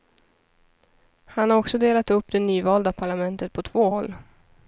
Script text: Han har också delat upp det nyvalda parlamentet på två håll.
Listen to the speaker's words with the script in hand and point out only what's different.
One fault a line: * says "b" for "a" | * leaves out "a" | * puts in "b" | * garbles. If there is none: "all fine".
all fine